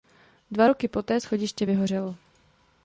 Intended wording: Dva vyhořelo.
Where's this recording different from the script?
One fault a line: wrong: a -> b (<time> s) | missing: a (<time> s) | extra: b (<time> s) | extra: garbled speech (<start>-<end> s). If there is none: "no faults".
extra: roky poté schodiště (0.6 s)